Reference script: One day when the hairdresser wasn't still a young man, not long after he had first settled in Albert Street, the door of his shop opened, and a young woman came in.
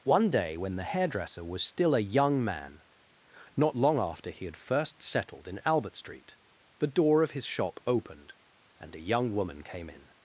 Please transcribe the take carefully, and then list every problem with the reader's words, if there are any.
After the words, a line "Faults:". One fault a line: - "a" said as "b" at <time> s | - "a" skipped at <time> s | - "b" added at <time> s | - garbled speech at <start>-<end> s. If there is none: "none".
One day when the hairdresser was still a young man, not long after he had first settled in Albert Street, the door of his shop opened, and a young woman came in.
Faults:
- "wasn't" said as "was" at 1.4 s